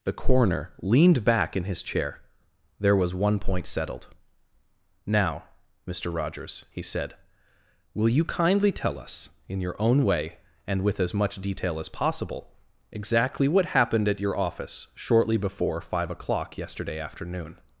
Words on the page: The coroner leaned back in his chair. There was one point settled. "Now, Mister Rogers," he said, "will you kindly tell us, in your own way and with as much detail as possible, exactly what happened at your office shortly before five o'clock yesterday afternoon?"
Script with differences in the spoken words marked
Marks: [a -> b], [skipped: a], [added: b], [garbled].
The coroner leaned back in his chair. There was one point settled. "Now, Mister Rogers," he said, "will you kindly tell us, in your own way and with as much detail as possible, exactly what happened at your office shortly before five o'clock yesterday afternoon?"